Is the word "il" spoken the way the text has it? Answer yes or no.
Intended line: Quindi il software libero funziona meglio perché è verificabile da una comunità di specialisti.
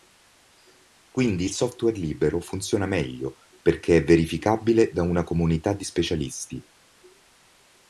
yes